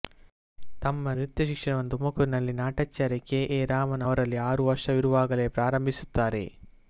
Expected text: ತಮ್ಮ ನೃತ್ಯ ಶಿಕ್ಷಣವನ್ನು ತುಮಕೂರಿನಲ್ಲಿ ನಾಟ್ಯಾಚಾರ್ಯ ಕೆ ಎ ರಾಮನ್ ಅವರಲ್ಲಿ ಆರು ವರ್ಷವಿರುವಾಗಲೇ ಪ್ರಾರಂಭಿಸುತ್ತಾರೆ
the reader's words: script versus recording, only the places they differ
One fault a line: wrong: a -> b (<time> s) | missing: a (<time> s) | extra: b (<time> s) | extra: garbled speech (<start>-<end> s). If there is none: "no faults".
no faults